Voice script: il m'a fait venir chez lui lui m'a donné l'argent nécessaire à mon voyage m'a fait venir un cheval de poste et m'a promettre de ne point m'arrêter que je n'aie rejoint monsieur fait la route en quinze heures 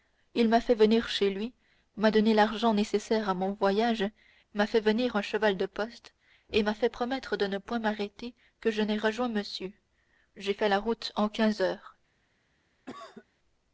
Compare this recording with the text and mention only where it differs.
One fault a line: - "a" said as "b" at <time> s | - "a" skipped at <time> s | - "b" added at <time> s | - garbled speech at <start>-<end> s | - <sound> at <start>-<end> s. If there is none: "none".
- "lui" skipped at 1.5 s
- "fait" added at 6.7 s
- "j'ai" added at 10.3 s
- cough at 12.9-13.3 s